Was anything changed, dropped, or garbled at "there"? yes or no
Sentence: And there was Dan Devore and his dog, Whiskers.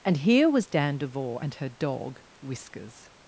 yes